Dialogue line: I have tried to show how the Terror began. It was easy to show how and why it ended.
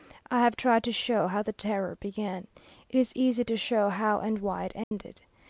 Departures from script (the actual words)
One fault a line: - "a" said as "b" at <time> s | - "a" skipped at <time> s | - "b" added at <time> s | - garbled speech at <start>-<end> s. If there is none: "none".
- "was" said as "is" at 3.0 s